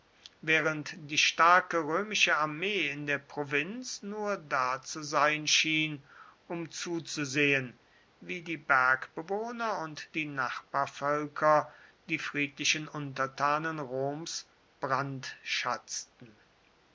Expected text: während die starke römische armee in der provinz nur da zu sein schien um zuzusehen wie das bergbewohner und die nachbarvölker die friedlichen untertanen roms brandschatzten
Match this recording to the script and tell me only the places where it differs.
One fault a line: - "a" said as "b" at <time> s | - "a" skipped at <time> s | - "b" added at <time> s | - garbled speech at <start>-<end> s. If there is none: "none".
- "das" said as "die" at 8.4 s